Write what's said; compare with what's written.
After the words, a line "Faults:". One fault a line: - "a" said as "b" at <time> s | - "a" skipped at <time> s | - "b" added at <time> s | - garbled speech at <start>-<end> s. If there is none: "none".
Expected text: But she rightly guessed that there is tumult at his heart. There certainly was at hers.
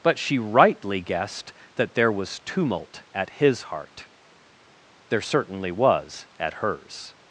But she rightly guessed that there was tumult at his heart. There certainly was at hers.
Faults:
- "is" said as "was" at 2.1 s